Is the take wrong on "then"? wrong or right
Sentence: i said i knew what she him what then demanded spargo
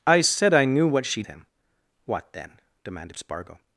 right